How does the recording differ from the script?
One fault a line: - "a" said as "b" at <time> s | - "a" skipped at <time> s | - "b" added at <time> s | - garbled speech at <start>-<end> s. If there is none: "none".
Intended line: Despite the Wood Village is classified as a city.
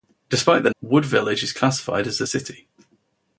none